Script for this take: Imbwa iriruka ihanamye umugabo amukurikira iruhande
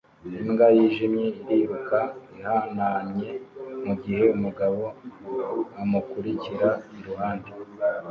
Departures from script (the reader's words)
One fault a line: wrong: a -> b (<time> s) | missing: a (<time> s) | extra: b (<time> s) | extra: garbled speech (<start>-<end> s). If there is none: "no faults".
extra: yijimye (0.8 s)
extra: mugihe (3.8 s)